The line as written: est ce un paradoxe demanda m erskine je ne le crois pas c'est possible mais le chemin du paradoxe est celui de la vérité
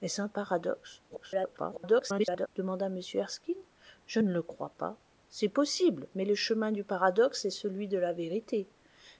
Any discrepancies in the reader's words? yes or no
yes